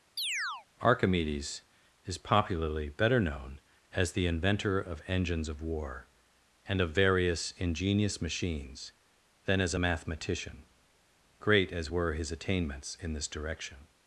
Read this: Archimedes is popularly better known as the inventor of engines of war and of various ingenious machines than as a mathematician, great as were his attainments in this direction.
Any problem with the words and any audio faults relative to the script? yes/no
yes